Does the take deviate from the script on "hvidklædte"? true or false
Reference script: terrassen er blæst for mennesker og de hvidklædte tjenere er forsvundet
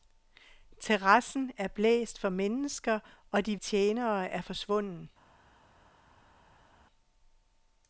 true